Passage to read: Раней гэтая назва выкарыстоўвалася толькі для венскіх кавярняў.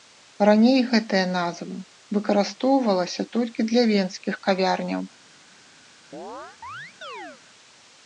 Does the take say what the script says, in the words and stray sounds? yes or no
no